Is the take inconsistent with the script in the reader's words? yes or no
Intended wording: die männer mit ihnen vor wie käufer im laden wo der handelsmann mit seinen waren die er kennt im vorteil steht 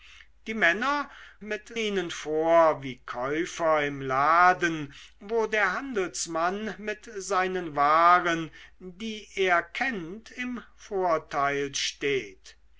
no